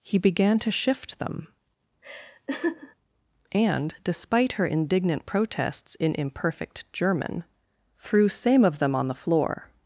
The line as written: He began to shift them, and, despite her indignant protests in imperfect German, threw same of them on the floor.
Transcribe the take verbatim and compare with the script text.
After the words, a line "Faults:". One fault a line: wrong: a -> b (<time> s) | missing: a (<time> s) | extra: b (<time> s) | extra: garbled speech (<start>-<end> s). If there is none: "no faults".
He began to shift them, and, despite her indignant protests in imperfect German, threw same of them on the floor.
Faults:
no faults